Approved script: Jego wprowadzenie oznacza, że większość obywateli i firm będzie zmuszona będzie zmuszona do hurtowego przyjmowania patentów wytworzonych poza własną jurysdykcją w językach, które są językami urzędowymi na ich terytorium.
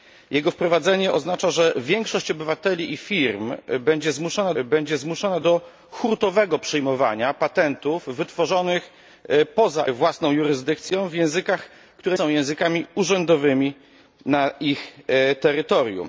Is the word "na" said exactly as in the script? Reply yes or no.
yes